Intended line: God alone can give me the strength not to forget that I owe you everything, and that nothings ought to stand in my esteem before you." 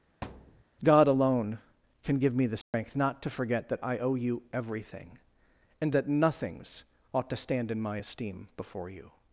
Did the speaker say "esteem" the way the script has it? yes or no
yes